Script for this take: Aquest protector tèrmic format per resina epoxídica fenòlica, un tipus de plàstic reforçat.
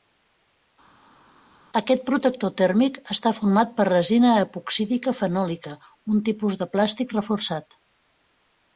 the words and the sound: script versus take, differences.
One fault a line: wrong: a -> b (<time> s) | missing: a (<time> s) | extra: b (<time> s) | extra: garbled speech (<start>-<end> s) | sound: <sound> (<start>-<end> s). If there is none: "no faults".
extra: està (3.2 s)